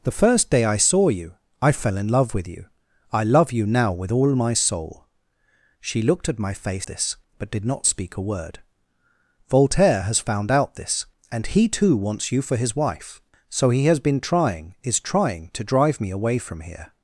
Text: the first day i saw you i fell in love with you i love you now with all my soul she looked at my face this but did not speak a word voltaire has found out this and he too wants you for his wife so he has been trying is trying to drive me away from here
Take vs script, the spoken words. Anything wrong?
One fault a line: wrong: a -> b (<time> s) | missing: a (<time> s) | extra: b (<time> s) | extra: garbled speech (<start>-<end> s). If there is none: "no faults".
no faults